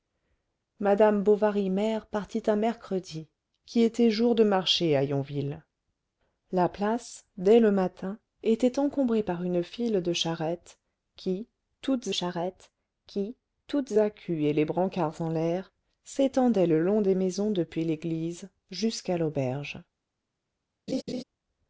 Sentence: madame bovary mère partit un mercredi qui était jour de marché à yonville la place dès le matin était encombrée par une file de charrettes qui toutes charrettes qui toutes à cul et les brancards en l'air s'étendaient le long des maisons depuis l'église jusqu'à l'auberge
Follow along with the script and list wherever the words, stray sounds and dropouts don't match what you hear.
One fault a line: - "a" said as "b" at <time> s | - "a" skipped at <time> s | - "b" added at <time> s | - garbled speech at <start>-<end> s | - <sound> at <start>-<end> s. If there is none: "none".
- laugh at 20.9-21.2 s